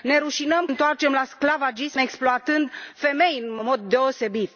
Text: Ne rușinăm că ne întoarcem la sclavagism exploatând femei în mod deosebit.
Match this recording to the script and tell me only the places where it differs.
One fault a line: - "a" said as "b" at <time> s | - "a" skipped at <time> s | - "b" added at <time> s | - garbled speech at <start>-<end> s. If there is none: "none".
- "că ne" skipped at 0.7 s